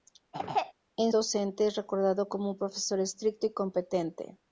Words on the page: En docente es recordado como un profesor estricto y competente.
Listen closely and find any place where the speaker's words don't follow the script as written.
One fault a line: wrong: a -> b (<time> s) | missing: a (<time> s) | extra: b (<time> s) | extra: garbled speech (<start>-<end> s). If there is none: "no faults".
no faults